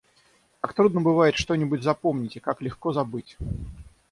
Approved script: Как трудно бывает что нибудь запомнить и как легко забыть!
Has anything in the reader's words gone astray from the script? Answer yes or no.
no